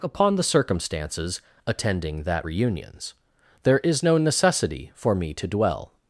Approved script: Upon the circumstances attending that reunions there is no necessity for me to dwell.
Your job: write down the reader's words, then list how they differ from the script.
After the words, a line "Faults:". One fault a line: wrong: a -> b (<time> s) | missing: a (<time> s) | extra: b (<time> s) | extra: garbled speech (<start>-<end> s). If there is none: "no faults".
Upon the circumstances attending that reunions there is no necessity for me to dwell.
Faults:
no faults